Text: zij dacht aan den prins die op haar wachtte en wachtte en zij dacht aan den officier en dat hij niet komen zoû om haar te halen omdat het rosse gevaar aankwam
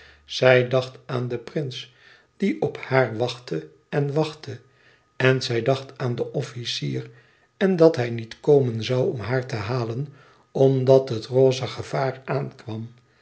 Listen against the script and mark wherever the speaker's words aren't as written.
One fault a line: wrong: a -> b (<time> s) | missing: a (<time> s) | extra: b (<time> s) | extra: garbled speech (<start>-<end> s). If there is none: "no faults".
no faults